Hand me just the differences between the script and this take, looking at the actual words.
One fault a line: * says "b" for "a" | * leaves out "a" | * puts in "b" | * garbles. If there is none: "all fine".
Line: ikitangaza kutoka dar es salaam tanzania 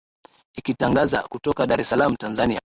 all fine